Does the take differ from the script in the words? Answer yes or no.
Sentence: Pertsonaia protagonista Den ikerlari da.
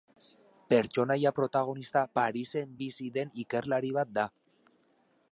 yes